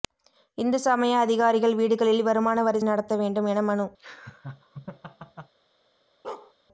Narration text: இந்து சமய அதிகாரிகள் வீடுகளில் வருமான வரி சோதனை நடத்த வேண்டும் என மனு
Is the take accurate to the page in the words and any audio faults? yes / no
no